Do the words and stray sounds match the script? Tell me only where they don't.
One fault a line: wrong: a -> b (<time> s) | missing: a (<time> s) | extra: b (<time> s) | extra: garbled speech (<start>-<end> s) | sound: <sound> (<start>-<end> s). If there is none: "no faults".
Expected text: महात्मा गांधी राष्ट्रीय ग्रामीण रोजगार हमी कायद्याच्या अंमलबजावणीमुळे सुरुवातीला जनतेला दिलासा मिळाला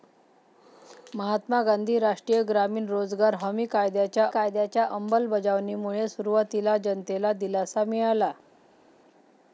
extra: कायद्याच्या (4.3 s)